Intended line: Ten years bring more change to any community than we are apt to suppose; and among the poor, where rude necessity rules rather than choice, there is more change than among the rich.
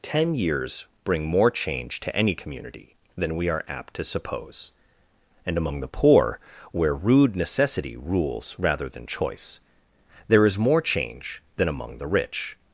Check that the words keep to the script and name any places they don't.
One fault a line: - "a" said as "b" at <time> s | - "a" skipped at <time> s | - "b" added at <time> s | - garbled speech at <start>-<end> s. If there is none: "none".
none